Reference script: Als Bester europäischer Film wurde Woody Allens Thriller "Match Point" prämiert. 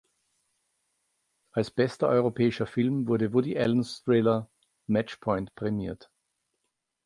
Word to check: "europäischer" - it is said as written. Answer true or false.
true